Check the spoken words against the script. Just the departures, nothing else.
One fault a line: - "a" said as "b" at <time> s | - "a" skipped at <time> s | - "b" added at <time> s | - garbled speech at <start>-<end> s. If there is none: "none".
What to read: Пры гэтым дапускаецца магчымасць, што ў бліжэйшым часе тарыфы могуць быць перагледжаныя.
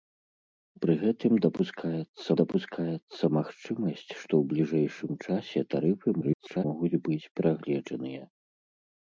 - "дапускаецца" added at 2.4 s
- garbled speech at 6.2-6.6 s